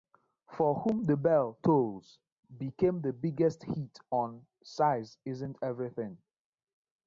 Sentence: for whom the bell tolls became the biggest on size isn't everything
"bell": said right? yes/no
yes